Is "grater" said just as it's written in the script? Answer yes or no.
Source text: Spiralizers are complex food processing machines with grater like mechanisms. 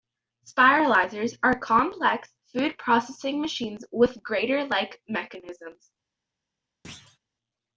yes